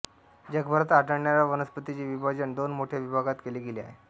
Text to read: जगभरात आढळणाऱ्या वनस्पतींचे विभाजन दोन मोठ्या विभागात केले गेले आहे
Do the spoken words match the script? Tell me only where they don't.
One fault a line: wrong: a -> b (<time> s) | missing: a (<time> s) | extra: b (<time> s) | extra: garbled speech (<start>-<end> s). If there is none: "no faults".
no faults